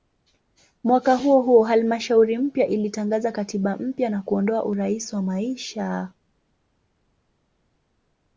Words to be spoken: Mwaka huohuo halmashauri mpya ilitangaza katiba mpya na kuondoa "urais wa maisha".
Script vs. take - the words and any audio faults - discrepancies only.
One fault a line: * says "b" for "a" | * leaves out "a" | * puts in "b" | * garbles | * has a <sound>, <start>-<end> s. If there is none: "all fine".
all fine